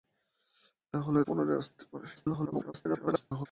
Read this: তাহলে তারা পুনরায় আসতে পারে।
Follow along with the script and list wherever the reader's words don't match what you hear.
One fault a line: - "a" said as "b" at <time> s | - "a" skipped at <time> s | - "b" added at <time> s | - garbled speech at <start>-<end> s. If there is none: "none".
- "তারা" skipped at 1.2 s
- garbled speech at 2.2-3.5 s